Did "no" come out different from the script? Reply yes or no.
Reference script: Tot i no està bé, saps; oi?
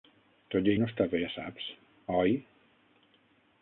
no